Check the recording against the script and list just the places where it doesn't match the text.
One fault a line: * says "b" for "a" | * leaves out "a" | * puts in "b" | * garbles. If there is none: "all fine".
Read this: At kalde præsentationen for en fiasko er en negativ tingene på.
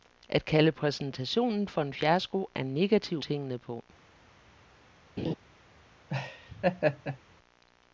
all fine